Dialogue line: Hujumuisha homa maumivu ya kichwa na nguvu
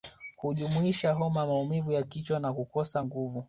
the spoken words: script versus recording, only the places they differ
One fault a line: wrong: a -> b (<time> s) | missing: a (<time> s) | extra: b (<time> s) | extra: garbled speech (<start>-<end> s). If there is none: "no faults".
extra: kukosa (2.5 s)